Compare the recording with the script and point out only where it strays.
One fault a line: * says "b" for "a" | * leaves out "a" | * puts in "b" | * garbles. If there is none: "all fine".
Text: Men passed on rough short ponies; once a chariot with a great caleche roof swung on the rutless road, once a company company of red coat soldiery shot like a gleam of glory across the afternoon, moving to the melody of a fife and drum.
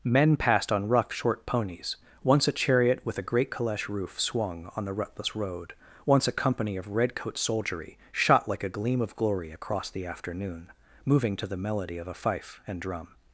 * leaves out "company"